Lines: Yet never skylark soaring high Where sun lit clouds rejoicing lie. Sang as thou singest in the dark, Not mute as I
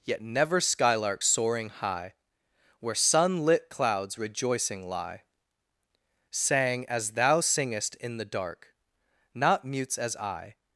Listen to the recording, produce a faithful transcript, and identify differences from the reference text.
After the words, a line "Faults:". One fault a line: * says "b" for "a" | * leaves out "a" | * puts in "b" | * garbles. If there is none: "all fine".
Yet never skylark soaring high Where sun lit clouds rejoicing lie. Sang as thou singest in the dark, Not mutes as I
Faults:
* says "mutes" for "mute"